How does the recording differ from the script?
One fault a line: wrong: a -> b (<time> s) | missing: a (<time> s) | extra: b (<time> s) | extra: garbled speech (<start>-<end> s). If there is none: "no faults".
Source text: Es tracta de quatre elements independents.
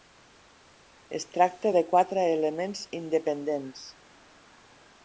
no faults